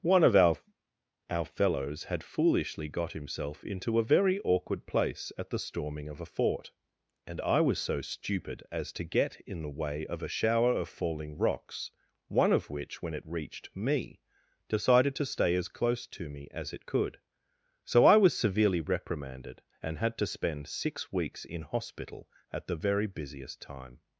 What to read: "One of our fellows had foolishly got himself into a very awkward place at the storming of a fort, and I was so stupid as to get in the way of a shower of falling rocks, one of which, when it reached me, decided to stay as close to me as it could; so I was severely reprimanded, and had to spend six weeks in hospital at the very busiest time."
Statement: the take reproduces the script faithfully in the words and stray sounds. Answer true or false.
false